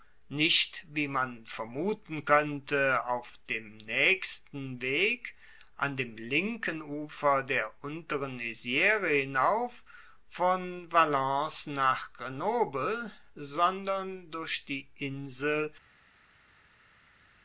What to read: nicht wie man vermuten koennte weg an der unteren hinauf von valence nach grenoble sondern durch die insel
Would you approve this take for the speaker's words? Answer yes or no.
no